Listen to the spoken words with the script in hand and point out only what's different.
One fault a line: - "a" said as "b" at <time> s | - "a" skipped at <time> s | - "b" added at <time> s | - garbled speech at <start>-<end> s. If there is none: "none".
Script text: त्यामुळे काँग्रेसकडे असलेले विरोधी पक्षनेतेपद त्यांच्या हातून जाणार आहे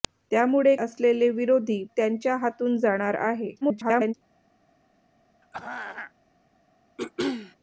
- "काँग्रेसकडे" skipped at 0.8 s
- "पक्षनेतेपद" skipped at 1.8 s
- garbled speech at 3.6-4.1 s